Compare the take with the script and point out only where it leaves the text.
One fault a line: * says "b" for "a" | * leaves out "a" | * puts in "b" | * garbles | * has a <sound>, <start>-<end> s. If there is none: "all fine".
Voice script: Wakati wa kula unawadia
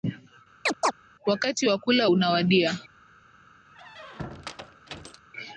* has a chirp, 0.7-0.9 s
* has a squeak, 3.7-5.2 s